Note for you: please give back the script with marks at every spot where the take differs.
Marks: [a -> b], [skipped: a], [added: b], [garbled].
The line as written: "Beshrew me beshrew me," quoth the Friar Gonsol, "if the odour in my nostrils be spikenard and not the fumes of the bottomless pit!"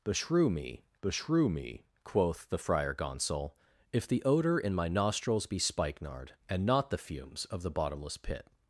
"Beshrew me beshrew me," quoth the Friar Gonsol, "if the odour in my nostrils be spikenard and not the fumes of the bottomless pit!"